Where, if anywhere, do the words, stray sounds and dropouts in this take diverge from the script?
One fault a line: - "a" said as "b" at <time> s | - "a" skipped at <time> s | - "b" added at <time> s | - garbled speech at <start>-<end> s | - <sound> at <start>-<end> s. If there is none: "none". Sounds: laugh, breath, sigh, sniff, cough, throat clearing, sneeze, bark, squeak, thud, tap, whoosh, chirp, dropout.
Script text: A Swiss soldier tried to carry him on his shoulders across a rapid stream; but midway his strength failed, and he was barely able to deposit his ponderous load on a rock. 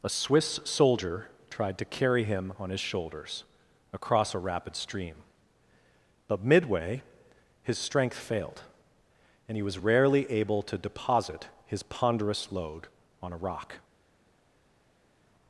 - "barely" said as "rarely" at 9.8 s